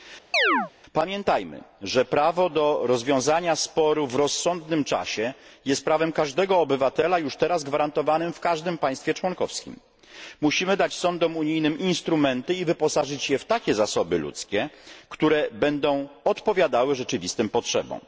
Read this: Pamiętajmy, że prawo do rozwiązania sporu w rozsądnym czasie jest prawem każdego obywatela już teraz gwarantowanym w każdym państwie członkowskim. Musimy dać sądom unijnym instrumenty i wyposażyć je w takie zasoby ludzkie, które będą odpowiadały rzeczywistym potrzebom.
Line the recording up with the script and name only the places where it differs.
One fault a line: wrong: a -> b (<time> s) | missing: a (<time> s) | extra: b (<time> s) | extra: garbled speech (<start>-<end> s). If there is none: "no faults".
no faults